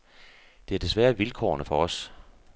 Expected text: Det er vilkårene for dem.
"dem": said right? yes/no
no